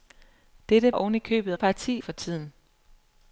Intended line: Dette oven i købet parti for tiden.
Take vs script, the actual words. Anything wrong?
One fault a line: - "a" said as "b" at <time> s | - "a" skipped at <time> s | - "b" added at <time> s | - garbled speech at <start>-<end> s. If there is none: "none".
none